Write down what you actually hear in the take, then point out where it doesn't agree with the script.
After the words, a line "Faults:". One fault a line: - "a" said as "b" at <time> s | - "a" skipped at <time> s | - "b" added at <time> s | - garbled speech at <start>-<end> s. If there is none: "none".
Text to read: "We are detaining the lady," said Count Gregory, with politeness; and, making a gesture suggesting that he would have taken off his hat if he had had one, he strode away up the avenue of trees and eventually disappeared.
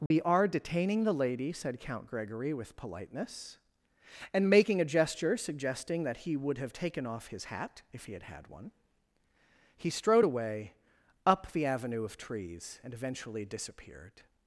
"We are detaining the lady," said Count Gregory, with politeness; and, making a gesture suggesting that he would have taken off his hat if he had had one, he strode away up the avenue of trees and eventually disappeared.
Faults:
none